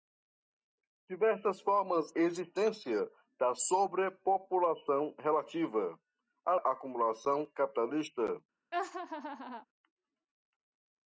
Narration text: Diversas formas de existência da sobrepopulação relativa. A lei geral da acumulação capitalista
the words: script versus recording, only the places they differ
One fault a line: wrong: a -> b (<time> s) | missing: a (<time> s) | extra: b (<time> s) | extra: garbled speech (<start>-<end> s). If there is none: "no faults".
missing: de (2.1 s)
missing: lei geral da (6.6 s)